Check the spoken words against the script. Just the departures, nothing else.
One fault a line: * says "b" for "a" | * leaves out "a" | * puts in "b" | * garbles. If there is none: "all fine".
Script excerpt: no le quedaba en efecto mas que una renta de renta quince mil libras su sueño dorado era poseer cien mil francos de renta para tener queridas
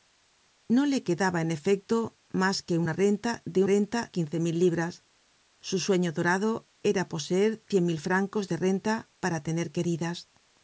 all fine